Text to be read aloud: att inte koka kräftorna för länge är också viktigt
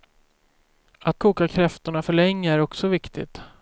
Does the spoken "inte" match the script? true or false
false